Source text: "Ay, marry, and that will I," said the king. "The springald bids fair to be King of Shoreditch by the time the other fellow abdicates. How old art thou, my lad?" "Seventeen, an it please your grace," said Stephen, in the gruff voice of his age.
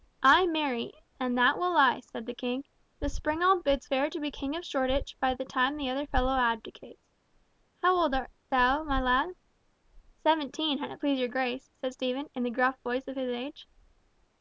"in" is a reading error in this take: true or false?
false